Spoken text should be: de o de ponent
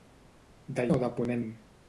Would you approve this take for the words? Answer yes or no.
yes